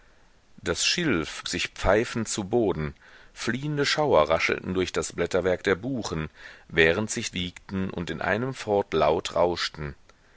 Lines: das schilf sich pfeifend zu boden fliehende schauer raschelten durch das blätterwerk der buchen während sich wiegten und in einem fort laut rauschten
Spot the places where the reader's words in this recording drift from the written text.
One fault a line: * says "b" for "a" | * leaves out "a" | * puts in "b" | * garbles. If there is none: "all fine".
all fine